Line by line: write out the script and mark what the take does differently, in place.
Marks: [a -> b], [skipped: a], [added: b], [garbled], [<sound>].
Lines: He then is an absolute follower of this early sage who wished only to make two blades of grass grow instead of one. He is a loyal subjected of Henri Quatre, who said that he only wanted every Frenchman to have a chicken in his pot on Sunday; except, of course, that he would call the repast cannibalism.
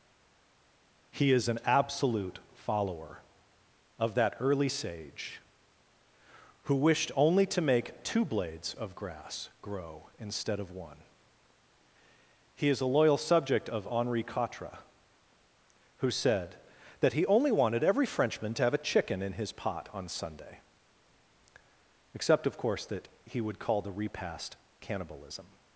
He [skipped: then] is an absolute follower of [this -> that] early sage who wished only to make two blades of grass grow instead of one. He is a loyal [subjected -> subject] of Henri Quatre, who said that he only wanted every Frenchman to have a chicken in his pot on Sunday; except, of course, that he would call the repast cannibalism.